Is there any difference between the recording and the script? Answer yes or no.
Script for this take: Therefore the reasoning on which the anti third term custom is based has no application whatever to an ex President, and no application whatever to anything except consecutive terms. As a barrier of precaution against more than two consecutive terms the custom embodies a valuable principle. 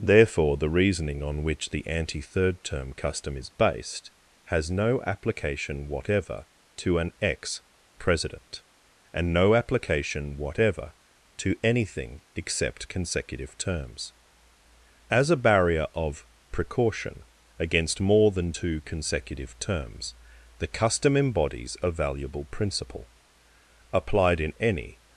yes